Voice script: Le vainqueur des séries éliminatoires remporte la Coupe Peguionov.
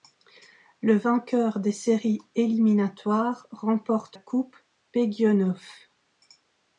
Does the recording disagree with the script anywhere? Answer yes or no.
yes